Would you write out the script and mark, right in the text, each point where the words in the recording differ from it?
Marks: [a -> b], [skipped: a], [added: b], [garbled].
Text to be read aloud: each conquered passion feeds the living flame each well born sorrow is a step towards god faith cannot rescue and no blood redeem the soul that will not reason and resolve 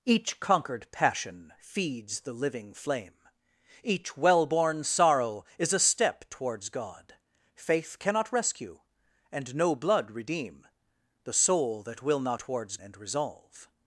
each conquered passion feeds the living flame each well born sorrow is a step towards god faith cannot rescue and no blood redeem the soul that will not [reason -> towards] and resolve